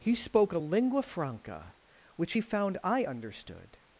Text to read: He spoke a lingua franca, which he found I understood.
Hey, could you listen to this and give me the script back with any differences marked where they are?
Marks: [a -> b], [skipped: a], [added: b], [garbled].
He spoke a lingua franca, which he found I understood.